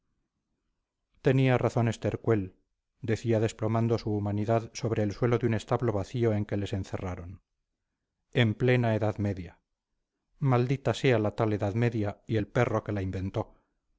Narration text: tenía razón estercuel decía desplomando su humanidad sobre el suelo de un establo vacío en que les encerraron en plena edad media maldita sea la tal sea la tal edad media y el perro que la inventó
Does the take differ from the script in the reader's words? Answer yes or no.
yes